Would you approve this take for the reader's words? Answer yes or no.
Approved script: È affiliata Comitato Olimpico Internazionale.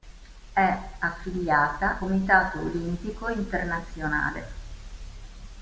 yes